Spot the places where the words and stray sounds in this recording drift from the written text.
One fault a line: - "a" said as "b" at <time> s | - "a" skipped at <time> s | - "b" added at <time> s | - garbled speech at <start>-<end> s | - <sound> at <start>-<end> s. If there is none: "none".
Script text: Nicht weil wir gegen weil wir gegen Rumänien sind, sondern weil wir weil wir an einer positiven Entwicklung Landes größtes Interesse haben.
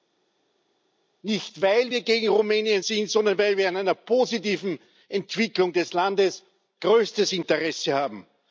- "weil wir gegen" skipped at 2.3 s
- "weil wir" skipped at 3.7 s
- "des" added at 5.7 s